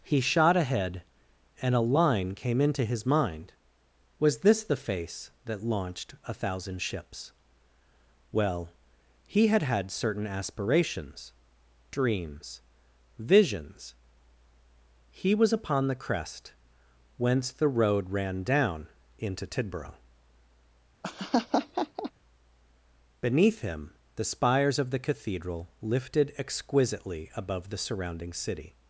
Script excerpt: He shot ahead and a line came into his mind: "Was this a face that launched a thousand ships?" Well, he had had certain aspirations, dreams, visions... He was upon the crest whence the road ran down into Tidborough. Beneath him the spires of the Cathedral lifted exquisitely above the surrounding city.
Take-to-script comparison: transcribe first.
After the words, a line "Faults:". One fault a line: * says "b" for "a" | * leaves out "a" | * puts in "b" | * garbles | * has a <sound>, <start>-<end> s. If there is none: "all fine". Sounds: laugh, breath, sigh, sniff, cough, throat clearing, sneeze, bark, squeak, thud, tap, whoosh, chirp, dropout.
He shot ahead and a line came into his mind: "Was this the face that launched a thousand ships?" Well, he had had certain aspirations, dreams, visions... He was upon the crest whence the road ran down into Tidborough. Beneath him the spires of the Cathedral lifted exquisitely above the surrounding city.
Faults:
* says "the" for "a"
* has a laugh, 21.0-22.1 s